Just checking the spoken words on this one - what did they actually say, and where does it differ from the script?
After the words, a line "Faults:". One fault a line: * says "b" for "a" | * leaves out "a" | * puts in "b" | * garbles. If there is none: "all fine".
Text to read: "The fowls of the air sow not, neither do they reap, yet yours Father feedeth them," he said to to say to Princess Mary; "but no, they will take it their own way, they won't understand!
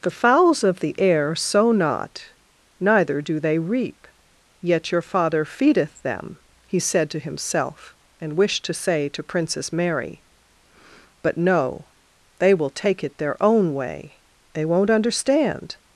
"The fowls of the air sow not, neither do they reap, yet your Father feedeth them," he said to himself and wished to say to Princess Mary; "but no, they will take it their own way, they won't understand!
Faults:
* says "your" for "yours"
* puts in "himself and wished"